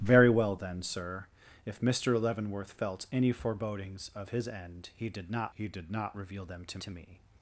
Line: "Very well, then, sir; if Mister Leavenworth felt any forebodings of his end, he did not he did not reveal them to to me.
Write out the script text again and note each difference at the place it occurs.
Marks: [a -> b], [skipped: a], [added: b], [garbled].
"Very well, then, sir; if Mister Leavenworth felt any forebodings of his end, he did not he did not reveal them to to me.